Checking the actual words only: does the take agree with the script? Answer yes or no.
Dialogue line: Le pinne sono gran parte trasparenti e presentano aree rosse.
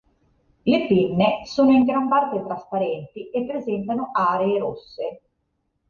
no